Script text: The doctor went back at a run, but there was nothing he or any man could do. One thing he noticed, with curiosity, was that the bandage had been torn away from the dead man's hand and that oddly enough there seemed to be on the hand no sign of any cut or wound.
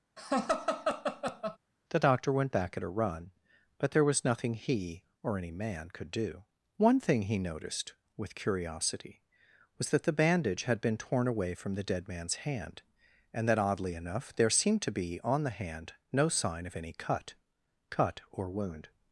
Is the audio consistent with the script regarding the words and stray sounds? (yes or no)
no